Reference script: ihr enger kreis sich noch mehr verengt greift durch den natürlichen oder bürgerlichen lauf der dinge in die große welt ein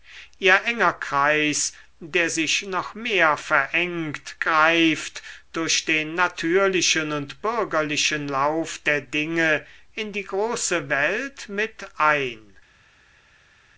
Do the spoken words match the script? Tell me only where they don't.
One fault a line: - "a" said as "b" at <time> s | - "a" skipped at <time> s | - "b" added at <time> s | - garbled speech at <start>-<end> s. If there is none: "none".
- "der" added at 2.0 s
- "oder" said as "und" at 7.1 s
- "mit" added at 11.5 s